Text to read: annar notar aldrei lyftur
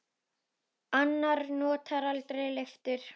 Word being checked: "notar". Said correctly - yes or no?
yes